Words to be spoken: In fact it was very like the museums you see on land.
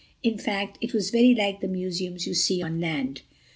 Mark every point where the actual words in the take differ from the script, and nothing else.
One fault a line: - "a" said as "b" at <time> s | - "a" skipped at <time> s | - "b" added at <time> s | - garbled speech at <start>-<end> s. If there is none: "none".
none